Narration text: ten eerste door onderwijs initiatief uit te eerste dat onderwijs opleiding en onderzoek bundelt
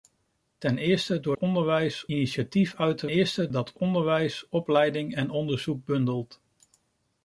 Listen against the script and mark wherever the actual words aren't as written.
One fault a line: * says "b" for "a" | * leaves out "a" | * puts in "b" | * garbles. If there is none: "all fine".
all fine